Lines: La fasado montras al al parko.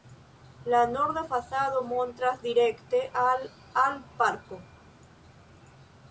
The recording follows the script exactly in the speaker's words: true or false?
false